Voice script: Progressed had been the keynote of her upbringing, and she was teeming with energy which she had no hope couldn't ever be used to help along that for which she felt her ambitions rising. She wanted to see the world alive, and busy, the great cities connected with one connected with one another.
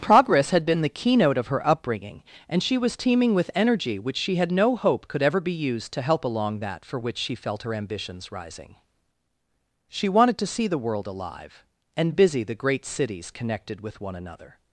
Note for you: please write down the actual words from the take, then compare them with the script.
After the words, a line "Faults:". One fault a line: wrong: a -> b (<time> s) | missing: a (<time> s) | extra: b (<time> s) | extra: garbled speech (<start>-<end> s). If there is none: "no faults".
Progress had been the keynote of her upbringing, and she was teeming with energy which she had no hope could ever be used to help along that for which she felt her ambitions rising. She wanted to see the world alive, and busy, the great cities connected with one another.
Faults:
wrong: Progressed -> Progress (0.0 s)
wrong: couldn't -> could (5.1 s)
missing: connected with one (14.1 s)